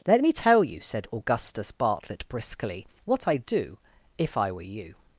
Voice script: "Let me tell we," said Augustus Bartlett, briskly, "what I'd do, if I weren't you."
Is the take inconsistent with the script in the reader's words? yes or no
yes